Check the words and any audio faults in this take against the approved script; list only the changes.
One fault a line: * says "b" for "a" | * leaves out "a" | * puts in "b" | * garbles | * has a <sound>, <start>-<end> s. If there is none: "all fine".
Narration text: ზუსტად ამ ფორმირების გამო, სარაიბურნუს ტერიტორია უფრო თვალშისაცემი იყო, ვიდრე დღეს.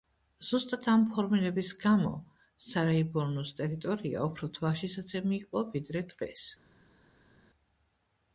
all fine